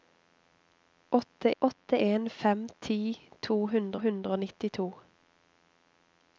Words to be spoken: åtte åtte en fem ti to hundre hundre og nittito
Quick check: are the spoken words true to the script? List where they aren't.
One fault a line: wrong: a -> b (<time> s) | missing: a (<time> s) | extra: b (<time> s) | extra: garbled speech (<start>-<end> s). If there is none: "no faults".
no faults